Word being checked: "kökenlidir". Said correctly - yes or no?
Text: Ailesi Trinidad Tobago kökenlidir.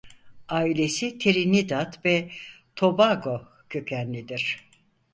yes